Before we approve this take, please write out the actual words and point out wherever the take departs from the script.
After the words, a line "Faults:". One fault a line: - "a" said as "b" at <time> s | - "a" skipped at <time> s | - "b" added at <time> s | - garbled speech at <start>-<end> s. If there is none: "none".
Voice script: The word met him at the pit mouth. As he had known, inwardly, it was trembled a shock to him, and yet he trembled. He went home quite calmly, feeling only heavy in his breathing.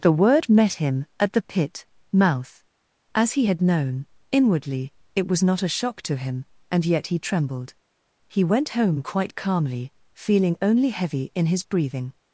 The word met him at the pit mouth. As he had known, inwardly, it was not a shock to him, and yet he trembled. He went home quite calmly, feeling only heavy in his breathing.
Faults:
- "trembled" said as "not" at 5.4 s